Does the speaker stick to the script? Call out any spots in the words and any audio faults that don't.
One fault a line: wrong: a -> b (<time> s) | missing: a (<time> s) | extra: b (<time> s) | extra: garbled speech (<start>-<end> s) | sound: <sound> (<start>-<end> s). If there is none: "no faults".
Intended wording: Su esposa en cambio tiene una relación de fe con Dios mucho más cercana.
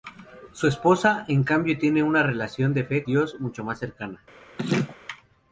missing: con (3.0 s)
sound: laugh (4.6-5.0 s)